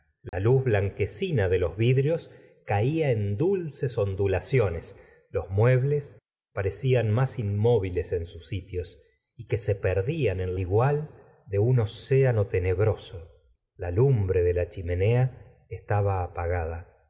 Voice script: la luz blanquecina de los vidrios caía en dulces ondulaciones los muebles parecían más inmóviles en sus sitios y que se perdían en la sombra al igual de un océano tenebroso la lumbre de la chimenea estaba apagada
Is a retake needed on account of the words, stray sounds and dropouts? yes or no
yes